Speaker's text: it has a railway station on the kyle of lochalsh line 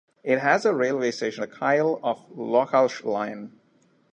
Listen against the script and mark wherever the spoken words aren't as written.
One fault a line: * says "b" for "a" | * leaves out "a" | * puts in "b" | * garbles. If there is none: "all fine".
* leaves out "on"